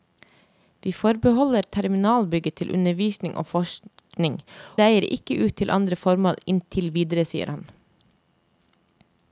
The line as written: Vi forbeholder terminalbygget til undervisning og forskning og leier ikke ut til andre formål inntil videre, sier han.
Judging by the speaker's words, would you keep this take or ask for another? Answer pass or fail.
fail